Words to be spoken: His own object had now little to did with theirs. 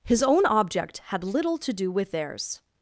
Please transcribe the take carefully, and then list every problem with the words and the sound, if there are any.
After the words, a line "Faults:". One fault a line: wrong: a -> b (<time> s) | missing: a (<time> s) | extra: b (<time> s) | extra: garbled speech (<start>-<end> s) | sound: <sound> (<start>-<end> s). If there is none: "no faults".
His own object had little to do with theirs.
Faults:
missing: now (1.2 s)
wrong: did -> do (1.7 s)